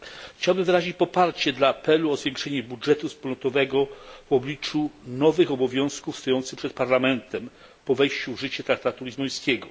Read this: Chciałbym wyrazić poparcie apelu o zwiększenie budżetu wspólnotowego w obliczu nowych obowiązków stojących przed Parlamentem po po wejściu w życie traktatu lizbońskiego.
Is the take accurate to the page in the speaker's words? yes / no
no